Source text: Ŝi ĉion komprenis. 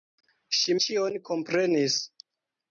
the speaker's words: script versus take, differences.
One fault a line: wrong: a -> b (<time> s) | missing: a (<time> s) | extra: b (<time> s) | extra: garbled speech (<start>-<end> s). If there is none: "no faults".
no faults